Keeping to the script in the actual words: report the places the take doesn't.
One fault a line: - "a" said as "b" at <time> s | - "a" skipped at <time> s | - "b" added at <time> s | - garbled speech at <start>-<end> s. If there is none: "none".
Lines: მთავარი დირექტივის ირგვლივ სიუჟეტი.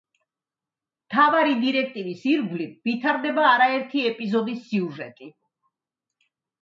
- "ვითარდება არაერთი ეპიზოდის" added at 2.9 s